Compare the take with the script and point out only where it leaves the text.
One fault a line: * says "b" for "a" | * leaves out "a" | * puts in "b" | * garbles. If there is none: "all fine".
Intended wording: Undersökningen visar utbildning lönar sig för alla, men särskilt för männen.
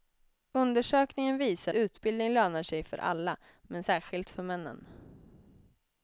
all fine